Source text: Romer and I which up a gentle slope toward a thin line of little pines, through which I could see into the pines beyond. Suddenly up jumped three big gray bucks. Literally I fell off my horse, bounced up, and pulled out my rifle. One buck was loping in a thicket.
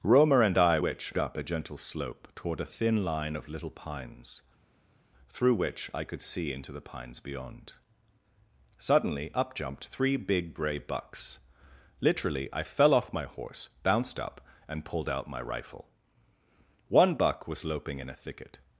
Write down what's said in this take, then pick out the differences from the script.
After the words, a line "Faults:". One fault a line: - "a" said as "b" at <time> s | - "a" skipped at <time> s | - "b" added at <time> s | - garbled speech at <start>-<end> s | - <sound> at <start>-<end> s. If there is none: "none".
Romer and I which up a gentle slope toward a thin line of little pines, through which I could see into the pines beyond. Suddenly up jumped three big gray bucks. Literally I fell off my horse, bounced up, and pulled out my rifle. One buck was loping in a thicket.
Faults:
none